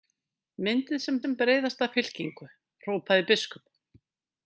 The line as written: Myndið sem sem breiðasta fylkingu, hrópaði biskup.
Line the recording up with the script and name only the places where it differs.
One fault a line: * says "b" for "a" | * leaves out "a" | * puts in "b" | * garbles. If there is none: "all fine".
all fine